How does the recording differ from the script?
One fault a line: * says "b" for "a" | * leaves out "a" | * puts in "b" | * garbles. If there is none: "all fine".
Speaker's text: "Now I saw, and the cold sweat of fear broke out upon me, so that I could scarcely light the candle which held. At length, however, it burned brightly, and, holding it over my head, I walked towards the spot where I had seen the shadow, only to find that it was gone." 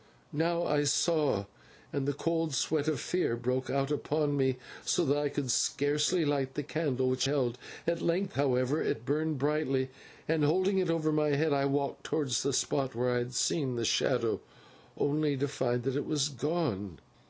all fine